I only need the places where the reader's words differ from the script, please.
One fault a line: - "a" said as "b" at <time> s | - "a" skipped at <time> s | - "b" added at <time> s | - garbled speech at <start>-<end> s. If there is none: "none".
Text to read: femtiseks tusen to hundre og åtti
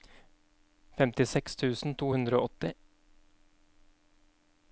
none